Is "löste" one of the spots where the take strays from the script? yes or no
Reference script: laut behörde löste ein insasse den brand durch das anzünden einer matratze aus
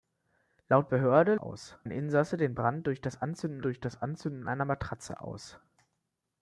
yes